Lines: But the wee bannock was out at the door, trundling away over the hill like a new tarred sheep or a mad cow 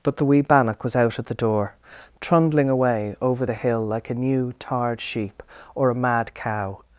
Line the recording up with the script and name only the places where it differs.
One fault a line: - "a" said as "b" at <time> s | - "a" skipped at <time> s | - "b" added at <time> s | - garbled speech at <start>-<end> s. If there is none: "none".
none